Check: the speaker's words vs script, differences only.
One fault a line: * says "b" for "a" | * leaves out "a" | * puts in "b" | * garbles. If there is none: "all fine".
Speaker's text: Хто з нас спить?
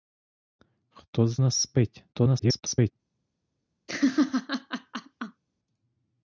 * garbles